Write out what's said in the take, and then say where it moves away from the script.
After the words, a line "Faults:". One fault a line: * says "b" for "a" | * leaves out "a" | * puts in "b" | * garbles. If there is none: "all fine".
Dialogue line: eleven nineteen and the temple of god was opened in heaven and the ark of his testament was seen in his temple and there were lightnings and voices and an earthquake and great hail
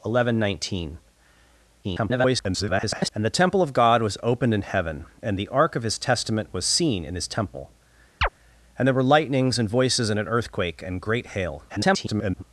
eleven nineteen [garbled] and the temple of god was opened in heaven and the ark of his testament was seen in his temple and there were lightnings and voices and an earthquake and great hail [garbled]
Faults:
* garbles
* garbles